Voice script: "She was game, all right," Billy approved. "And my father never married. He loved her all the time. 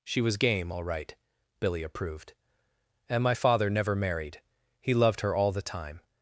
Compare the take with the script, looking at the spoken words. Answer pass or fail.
pass